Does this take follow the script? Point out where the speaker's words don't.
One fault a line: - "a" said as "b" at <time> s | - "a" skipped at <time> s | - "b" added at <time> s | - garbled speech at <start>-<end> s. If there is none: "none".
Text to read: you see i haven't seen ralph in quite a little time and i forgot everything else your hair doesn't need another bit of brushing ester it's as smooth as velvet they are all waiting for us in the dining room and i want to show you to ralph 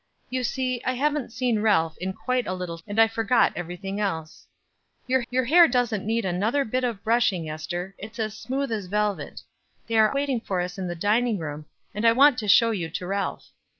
- "time" skipped at 2.8 s
- "your" added at 5.3 s
- "all" skipped at 10.1 s